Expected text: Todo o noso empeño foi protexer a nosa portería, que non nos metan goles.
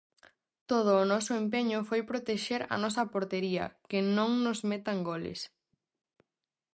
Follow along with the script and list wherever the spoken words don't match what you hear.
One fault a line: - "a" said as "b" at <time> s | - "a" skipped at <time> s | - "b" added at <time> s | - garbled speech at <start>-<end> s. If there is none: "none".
none